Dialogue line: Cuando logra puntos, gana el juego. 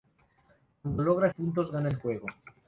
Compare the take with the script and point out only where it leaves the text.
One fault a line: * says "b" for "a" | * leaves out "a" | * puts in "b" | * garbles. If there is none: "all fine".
all fine